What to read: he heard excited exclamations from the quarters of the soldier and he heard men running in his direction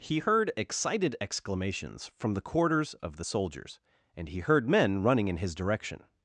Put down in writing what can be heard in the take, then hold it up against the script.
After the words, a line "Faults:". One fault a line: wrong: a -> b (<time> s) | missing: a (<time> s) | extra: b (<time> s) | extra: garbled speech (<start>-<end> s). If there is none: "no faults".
he heard excited exclamations from the quarters of the soldiers and he heard men running in his direction
Faults:
wrong: soldier -> soldiers (3.2 s)